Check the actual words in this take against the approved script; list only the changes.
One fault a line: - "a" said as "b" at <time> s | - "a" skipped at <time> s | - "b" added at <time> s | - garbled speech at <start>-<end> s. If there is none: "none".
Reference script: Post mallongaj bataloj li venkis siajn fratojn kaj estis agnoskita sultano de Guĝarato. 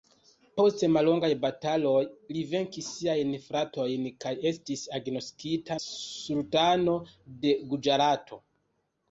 none